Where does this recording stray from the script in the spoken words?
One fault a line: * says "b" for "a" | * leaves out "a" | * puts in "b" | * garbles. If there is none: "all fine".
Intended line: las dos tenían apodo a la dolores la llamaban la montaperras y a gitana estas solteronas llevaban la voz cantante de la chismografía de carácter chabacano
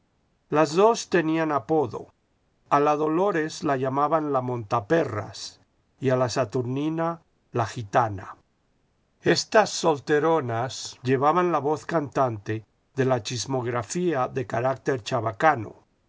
* puts in "la saturnina la"